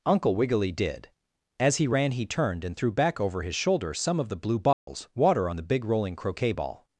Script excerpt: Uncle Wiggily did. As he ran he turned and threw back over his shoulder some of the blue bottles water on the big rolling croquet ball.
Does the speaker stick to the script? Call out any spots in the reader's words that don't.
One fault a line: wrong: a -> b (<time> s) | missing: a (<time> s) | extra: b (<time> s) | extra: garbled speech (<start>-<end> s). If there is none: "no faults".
no faults